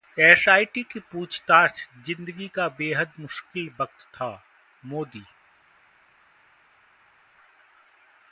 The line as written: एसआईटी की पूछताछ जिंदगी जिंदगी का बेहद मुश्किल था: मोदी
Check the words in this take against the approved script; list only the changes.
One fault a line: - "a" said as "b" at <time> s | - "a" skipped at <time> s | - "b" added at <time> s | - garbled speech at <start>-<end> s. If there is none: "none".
- "जिंदगी" skipped at 2.5 s
- "वक्त" added at 3.8 s